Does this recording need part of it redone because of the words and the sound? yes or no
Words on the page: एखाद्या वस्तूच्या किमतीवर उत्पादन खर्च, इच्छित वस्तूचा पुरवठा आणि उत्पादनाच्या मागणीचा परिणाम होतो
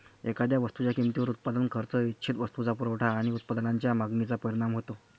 no